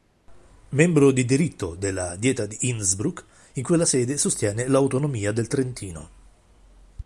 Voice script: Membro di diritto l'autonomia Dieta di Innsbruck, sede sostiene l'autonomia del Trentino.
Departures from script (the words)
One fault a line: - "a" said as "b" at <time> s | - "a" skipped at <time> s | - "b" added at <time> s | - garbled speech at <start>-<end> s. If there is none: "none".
- "l'autonomia" said as "della" at 1.8 s
- "in quella" added at 3.5 s